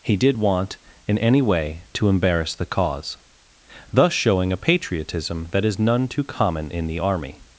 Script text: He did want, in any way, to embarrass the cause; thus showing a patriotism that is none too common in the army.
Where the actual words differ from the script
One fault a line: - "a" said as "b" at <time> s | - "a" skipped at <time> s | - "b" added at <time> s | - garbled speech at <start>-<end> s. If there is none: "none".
none